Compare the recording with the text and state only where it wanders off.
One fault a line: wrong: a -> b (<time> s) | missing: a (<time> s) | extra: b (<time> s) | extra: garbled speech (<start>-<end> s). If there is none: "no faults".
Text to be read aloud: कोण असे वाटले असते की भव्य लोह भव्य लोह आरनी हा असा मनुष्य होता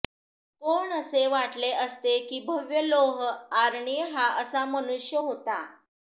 missing: भव्य लोह (3.2 s)